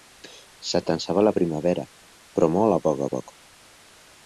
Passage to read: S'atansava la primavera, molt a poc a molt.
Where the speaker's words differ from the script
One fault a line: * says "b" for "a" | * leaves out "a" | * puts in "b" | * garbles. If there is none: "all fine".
* puts in "però"
* says "poc" for "molt"